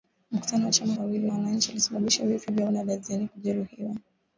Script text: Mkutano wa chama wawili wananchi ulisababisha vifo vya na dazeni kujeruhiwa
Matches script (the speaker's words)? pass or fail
pass